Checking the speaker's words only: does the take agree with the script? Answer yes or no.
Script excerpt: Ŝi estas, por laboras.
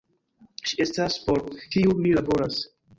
no